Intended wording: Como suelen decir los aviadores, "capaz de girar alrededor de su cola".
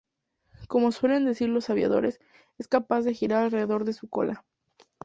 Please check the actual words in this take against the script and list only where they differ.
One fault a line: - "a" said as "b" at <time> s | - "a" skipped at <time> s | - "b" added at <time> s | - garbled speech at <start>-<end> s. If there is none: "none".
- "es" added at 2.6 s